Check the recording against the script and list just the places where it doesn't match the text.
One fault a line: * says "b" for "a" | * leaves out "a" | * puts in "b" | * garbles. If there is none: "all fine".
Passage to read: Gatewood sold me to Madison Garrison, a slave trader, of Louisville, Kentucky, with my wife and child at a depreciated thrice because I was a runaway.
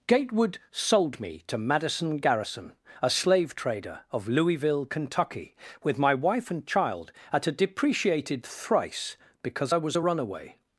all fine